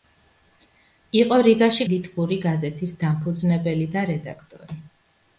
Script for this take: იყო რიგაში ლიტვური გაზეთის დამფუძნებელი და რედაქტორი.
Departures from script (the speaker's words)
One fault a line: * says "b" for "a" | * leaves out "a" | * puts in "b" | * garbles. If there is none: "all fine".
all fine